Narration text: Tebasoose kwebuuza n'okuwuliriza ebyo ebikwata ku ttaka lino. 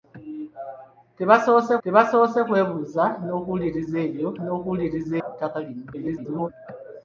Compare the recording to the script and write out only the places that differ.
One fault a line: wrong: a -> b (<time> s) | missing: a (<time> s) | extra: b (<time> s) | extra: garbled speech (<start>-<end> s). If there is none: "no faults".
extra: tebasoose (1.8 s)
wrong: ebikwata -> n'okuwuliriza (4.4 s)
extra: garbled speech (5.9-6.5 s)